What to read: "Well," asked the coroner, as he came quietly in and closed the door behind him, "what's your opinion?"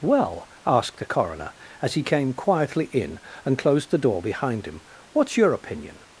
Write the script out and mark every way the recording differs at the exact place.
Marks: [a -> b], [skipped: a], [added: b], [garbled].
"Well," asked the coroner, as he came quietly in and closed the door behind him, "what's your opinion?"